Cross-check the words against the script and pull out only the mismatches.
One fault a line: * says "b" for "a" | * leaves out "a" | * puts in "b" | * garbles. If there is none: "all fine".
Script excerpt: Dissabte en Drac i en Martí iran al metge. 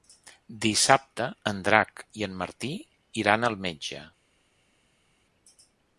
all fine